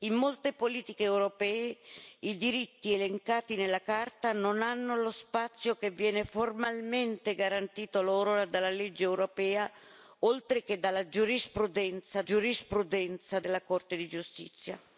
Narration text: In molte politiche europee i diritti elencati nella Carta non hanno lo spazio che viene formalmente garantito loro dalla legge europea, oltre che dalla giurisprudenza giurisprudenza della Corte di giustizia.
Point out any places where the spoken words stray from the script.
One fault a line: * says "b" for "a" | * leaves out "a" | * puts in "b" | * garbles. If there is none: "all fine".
all fine